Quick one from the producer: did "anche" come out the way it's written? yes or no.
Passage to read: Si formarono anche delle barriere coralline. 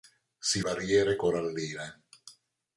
no